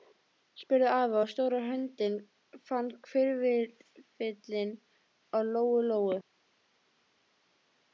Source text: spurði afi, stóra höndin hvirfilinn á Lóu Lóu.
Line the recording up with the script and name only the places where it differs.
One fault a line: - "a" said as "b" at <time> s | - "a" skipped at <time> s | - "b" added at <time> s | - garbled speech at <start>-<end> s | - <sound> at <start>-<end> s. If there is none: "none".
- "og" added at 1.2 s
- "fann" added at 2.7 s